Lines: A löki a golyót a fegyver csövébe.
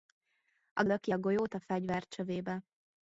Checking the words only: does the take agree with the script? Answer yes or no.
yes